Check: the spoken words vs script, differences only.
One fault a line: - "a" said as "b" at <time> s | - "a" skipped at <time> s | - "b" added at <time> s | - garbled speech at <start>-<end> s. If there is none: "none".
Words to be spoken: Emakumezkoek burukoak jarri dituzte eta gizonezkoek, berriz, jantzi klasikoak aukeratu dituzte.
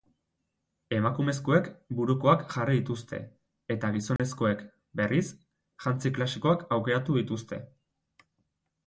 none